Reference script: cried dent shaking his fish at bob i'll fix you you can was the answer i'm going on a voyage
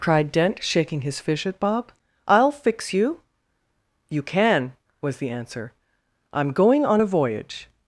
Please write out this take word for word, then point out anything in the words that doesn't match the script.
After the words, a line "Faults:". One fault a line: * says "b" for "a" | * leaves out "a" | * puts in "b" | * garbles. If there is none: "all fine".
cried dent shaking his fish at bob i'll fix you you can was the answer i'm going on a voyage
Faults:
all fine